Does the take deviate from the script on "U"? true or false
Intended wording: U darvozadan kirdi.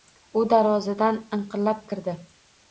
false